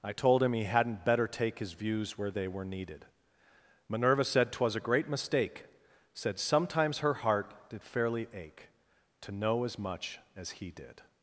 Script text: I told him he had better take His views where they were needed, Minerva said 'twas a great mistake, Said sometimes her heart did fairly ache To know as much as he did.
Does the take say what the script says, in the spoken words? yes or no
no